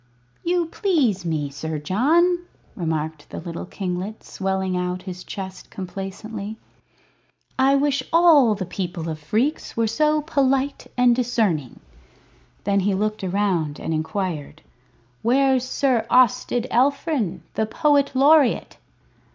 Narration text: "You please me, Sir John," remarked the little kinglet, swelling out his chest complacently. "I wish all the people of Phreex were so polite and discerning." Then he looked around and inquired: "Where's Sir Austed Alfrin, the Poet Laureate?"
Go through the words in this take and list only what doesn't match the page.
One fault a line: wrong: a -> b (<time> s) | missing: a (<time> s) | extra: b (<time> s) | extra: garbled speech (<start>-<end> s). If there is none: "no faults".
no faults